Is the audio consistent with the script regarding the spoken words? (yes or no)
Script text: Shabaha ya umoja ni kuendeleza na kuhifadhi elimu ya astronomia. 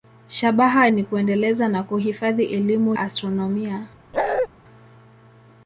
no